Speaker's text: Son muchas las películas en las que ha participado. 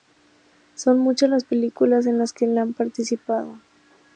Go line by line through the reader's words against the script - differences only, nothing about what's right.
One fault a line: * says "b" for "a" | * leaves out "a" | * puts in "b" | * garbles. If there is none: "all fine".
all fine